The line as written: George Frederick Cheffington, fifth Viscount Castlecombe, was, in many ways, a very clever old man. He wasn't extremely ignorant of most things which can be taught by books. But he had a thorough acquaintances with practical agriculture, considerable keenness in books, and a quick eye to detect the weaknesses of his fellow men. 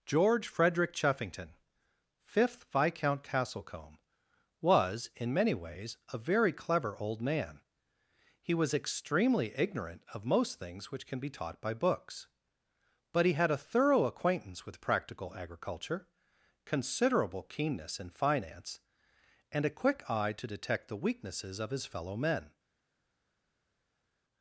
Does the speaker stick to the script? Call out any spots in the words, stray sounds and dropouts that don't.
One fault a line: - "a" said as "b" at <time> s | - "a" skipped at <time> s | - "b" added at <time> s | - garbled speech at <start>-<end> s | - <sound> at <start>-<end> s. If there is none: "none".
- "wasn't" said as "was" at 8.5 s
- "acquaintances" said as "acquaintance" at 14.1 s
- "books" said as "finance" at 18.1 s